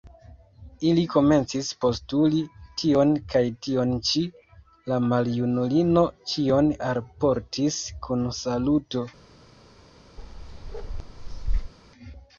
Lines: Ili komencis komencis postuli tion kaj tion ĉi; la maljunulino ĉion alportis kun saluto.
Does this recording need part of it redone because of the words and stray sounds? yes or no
yes